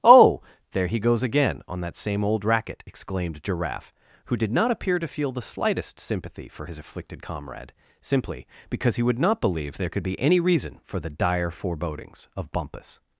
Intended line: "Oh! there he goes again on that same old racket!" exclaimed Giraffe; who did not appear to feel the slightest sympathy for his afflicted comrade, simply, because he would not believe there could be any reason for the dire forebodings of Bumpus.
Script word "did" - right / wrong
right